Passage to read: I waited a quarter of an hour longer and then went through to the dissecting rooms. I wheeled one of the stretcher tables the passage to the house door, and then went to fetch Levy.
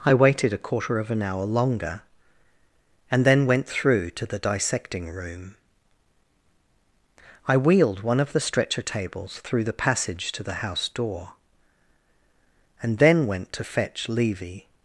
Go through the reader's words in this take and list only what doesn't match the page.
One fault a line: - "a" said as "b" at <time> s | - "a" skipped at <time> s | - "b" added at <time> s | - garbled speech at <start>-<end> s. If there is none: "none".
- "rooms" said as "room" at 5.1 s
- "through" added at 9.4 s